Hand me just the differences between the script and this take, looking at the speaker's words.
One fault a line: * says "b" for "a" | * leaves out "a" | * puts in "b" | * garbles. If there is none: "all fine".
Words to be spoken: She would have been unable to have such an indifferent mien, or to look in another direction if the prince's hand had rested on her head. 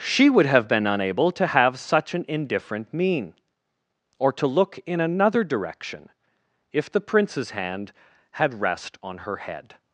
* says "rest" for "rested"